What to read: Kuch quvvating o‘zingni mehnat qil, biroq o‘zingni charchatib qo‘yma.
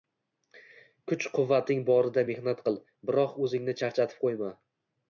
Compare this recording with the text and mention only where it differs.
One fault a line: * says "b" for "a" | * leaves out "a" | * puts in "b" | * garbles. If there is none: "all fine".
* says "borida" for "o‘zingni"